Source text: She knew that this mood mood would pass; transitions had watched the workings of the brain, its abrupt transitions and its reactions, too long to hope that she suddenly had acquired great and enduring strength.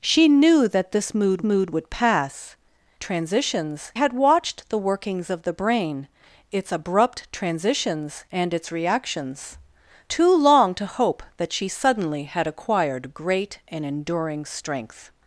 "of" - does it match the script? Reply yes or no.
yes